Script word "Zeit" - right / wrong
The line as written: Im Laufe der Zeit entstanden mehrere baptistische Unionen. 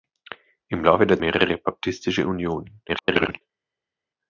wrong